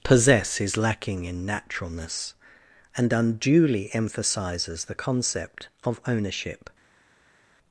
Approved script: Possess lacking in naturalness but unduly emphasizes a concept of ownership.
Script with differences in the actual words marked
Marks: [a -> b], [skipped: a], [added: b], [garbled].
Possess [added: is] lacking in naturalness [but -> and] unduly emphasizes [a -> the] concept of ownership.